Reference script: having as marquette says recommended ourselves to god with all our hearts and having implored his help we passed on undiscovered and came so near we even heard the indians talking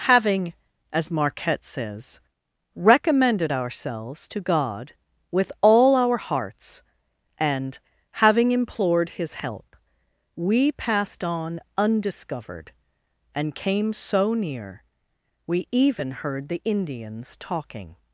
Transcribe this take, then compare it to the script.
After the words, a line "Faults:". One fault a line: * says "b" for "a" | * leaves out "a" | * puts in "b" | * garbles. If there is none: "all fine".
having as marquette says recommended ourselves to god with all our hearts and having implored his help we passed on undiscovered and came so near we even heard the indians talking
Faults:
all fine